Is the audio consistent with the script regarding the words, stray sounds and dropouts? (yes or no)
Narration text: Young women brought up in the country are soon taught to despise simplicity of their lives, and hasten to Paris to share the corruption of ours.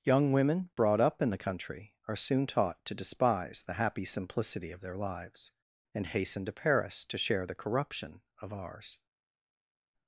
no